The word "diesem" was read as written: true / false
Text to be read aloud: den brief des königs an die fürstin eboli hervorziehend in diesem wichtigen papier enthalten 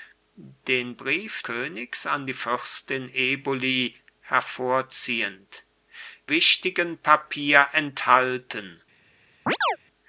false